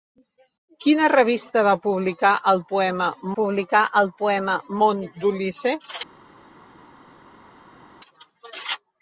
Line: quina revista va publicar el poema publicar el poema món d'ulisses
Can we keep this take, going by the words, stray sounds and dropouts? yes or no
yes